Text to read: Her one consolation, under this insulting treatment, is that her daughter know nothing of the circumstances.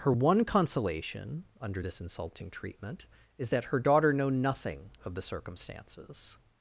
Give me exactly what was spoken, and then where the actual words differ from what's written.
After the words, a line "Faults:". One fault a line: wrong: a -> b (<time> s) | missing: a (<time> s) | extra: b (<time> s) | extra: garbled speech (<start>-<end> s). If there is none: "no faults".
Her one consolation, under this insulting treatment, is that her daughter know nothing of the circumstances.
Faults:
no faults